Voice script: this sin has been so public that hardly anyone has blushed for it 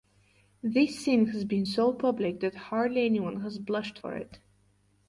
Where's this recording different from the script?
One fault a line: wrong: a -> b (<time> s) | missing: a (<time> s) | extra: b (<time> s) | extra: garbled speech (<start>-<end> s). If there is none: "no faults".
no faults